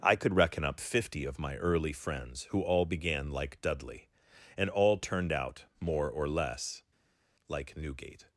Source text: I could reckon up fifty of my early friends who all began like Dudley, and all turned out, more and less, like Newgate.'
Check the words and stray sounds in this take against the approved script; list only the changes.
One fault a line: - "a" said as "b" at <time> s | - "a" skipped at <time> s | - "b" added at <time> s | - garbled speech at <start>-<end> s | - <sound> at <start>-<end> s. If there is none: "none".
- "and" said as "or" at 6.1 s